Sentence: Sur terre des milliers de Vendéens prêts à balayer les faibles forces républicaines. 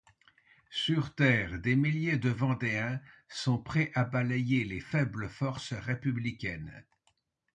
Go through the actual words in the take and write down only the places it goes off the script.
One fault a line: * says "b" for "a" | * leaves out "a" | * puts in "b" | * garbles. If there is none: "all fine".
* puts in "sont"